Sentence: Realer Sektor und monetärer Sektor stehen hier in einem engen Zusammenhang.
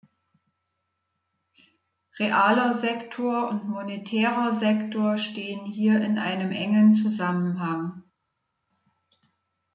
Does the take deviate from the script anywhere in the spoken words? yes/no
no